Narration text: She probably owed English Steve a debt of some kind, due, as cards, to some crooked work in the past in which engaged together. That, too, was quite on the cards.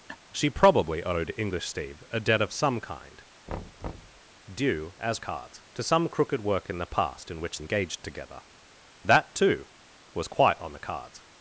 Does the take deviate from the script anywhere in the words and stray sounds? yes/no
yes